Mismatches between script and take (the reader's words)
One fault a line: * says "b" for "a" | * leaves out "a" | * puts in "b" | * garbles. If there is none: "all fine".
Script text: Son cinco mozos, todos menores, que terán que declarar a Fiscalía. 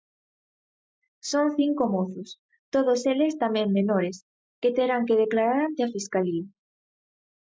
* puts in "eles tamén"
* puts in "ante"